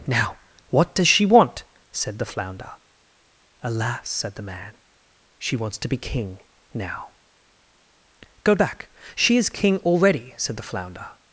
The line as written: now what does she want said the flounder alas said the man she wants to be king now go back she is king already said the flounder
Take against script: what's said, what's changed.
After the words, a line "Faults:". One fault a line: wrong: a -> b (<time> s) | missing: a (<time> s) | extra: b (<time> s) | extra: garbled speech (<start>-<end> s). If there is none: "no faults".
now what does she want said the flounder alas said the man she wants to be king now go back she is king already said the flounder
Faults:
no faults